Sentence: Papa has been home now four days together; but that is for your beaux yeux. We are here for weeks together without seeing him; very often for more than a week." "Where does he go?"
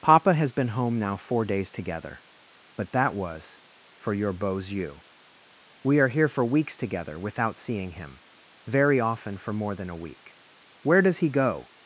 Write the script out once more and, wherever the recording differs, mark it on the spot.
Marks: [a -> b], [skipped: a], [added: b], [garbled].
Papa has been home now four days together; but that [is -> was] for your beaux yeux. We are here for weeks together without seeing him; very often for more than a week." "Where does he go?"